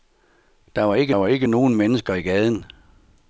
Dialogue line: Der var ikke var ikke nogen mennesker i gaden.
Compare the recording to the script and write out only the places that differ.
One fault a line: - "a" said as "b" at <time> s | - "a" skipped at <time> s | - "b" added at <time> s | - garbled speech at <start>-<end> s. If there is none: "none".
none